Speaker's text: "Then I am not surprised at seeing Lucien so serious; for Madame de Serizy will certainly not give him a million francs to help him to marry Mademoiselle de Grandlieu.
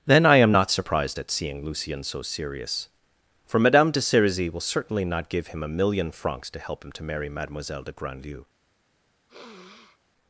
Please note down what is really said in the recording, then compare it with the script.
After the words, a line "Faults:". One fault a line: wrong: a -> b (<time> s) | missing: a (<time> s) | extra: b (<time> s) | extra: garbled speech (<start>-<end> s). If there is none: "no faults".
"Then I am not surprised at seeing Lucien so serious; for Madame de Serizy will certainly not give him a million francs to help him to marry Mademoiselle de Grandlieu.
Faults:
no faults